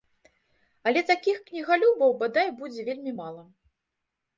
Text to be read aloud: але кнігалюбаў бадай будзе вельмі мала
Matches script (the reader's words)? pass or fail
fail